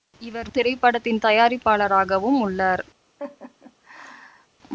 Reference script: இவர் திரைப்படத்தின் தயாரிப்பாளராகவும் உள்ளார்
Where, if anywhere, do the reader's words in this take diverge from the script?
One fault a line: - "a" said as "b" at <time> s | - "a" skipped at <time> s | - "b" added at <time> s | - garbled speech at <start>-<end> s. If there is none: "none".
none